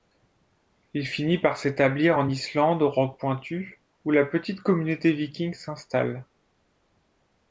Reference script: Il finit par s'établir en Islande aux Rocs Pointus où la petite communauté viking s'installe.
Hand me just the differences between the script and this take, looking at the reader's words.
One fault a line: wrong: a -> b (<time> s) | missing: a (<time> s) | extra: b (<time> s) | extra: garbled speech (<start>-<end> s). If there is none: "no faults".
no faults